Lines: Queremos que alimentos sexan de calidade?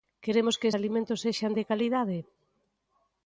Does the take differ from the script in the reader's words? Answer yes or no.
no